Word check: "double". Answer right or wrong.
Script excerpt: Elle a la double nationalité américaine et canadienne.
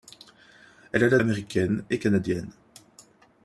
wrong